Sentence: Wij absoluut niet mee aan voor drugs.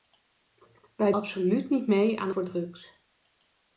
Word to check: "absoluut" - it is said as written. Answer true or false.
true